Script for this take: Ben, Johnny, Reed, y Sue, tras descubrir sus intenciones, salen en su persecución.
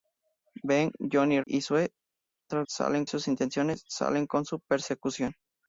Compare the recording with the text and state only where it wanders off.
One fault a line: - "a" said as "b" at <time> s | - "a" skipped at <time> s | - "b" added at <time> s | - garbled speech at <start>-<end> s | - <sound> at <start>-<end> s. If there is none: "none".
- "Reed" skipped at 1.4 s
- "descubrir" said as "salen" at 2.7 s